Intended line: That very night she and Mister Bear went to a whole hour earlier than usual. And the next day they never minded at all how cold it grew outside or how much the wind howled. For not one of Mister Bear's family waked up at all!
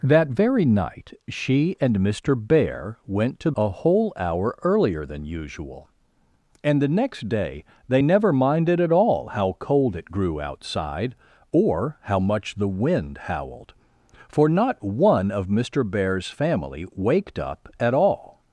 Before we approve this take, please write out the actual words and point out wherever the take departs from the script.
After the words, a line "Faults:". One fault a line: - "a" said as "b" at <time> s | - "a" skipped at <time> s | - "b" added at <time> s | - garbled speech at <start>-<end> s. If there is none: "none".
That very night she and Mister Bear went to a whole hour earlier than usual. And the next day they never minded at all how cold it grew outside or how much the wind howled. For not one of Mister Bear's family waked up at all!
Faults:
none